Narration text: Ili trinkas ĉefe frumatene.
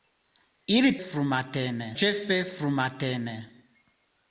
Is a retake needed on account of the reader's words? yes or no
yes